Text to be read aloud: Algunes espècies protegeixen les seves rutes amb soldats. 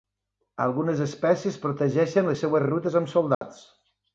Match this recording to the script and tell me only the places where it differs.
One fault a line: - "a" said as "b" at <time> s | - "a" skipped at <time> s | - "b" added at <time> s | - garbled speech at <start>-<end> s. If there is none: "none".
none